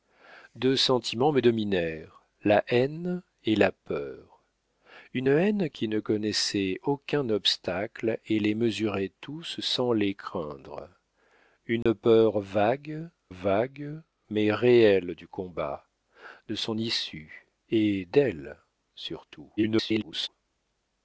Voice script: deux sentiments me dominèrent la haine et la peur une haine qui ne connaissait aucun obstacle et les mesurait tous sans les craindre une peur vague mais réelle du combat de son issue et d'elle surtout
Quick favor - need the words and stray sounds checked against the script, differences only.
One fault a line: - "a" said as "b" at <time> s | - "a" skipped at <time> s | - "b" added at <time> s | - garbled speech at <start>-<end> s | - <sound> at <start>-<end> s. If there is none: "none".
- dropout at 11.8-11.9 s
- "vague" added at 13.3 s
- garbled speech at 19.6-20.3 s